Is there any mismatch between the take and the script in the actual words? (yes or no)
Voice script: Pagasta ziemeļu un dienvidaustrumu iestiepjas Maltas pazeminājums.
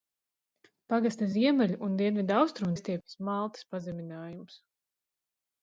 no